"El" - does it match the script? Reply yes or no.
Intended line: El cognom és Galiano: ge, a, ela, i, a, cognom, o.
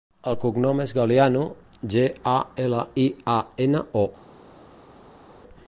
yes